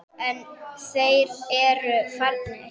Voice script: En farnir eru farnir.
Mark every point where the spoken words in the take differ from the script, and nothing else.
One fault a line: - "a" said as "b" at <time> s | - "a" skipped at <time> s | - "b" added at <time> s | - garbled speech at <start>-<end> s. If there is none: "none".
- "farnir" said as "þeir" at 0.8 s